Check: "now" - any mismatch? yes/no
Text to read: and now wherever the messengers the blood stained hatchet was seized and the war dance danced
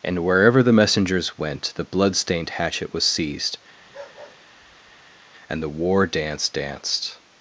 yes